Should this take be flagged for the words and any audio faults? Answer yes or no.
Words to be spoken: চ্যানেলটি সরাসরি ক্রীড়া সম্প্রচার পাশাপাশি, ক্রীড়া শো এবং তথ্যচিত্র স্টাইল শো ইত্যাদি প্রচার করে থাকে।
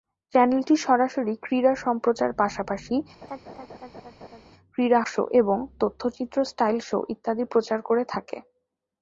yes